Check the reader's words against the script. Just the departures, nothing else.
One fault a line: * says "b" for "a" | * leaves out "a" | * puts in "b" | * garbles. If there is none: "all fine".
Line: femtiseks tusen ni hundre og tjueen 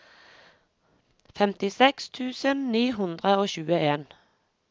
all fine